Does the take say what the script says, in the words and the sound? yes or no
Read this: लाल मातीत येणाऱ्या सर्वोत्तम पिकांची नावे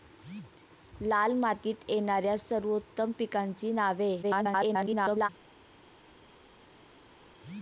no